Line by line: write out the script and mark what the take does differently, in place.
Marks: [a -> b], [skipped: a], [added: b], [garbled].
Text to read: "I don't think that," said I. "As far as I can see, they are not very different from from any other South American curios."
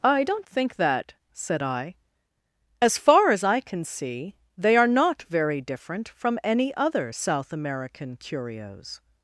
"I don't think that," said I. "As far as I can see, they are not very different from [skipped: from] any other South American curios."